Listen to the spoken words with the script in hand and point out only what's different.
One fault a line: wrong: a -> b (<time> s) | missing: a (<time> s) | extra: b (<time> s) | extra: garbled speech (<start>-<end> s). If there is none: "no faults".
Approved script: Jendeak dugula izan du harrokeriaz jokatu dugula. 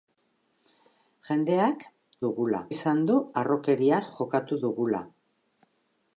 no faults